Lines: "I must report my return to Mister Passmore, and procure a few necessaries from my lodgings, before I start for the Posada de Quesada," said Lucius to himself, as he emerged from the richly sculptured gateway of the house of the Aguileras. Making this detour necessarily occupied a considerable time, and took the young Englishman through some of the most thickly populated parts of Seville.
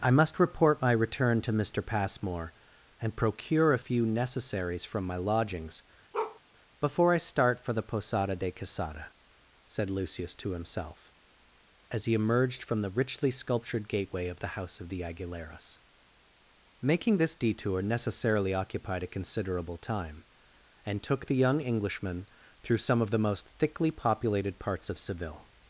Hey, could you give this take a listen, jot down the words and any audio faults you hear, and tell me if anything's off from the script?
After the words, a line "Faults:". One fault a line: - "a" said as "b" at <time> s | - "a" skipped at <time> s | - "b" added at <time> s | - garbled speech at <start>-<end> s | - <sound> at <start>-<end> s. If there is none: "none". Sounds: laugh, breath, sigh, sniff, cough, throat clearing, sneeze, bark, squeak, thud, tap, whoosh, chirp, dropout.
"I must report my return to Mister Passmore, and procure a few necessaries from my lodgings, before I start for the Posada de Quesada," said Lucius to himself, as he emerged from the richly sculptured gateway of the house of the Aguileras. Making this detour necessarily occupied a considerable time, and took the young Englishman through some of the most thickly populated parts of Seville.
Faults:
- bark at 6.1-6.4 s